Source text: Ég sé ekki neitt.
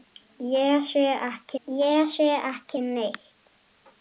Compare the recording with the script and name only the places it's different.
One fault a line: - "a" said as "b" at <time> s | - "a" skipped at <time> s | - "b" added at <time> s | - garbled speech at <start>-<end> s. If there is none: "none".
- "ég sé ekki" added at 1.6 s